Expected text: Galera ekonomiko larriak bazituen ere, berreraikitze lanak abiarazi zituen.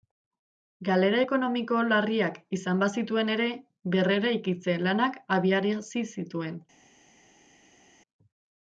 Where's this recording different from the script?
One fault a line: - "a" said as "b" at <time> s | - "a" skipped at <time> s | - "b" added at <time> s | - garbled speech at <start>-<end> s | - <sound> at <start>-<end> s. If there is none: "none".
- "izan" added at 2.6 s